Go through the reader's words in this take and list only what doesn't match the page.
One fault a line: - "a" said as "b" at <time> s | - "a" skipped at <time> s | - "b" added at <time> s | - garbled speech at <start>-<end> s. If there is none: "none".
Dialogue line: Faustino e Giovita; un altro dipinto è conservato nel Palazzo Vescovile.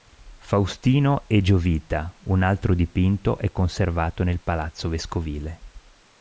none